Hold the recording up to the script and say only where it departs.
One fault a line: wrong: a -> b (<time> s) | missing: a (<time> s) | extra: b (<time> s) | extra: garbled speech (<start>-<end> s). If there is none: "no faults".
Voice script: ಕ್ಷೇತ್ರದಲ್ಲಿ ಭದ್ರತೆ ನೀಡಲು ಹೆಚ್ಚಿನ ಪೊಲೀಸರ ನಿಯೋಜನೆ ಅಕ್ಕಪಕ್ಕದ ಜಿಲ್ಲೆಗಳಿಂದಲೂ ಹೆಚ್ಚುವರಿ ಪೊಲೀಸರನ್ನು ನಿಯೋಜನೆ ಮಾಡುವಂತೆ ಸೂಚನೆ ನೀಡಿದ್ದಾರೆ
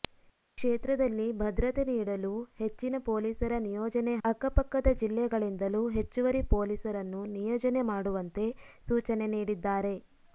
no faults